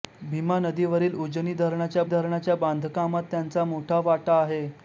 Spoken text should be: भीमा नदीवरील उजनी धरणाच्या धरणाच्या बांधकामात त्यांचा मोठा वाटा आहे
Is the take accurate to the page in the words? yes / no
yes